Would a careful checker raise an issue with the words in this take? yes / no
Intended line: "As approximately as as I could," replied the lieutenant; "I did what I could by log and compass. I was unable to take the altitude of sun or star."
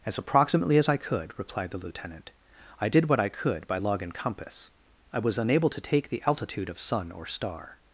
yes